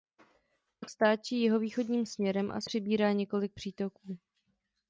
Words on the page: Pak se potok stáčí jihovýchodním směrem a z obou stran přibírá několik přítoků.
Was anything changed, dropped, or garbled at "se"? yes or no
yes